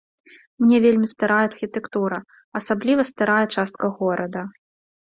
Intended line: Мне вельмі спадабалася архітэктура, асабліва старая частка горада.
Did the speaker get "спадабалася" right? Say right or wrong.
wrong